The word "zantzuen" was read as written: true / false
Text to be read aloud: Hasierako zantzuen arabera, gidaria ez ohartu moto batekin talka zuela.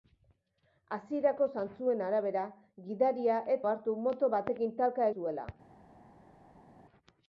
true